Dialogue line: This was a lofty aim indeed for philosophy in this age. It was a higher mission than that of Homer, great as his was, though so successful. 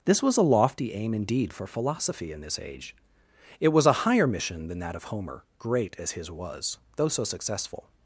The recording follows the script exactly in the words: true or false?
true